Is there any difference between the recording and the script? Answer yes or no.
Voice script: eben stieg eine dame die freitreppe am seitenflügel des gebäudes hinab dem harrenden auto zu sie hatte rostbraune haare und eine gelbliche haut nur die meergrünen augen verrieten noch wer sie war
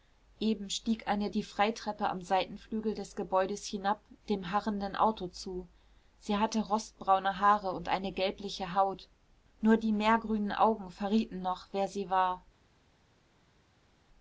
yes